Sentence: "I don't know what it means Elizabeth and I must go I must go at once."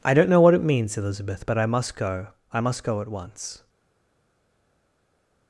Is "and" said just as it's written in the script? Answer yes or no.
no